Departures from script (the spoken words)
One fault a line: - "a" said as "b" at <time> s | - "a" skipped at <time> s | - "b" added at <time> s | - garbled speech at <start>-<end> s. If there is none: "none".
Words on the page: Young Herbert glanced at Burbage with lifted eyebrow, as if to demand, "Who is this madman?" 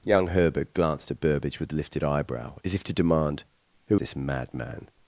- "is" skipped at 4.0 s